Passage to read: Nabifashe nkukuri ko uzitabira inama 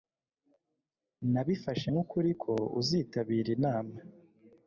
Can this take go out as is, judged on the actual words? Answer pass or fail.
pass